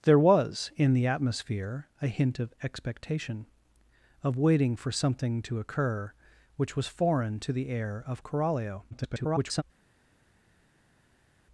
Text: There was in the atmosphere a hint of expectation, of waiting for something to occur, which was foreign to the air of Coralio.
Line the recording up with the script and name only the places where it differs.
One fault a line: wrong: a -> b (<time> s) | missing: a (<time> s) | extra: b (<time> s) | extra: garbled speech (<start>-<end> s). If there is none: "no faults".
extra: garbled speech (8.9-9.6 s)